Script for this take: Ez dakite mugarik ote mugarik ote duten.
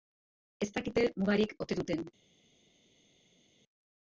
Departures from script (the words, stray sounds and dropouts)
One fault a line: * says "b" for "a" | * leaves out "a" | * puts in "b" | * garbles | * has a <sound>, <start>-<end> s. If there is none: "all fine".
* leaves out "mugarik ote"